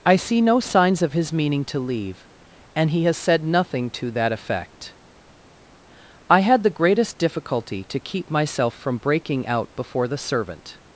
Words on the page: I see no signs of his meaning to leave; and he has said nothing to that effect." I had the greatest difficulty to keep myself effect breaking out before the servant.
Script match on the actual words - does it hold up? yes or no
no